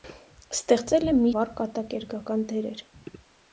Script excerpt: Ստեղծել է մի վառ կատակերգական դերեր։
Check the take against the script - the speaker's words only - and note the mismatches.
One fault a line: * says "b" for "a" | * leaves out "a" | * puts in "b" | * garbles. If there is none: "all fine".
all fine